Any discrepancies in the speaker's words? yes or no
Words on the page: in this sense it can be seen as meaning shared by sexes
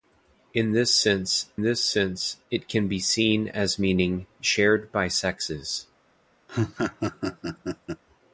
yes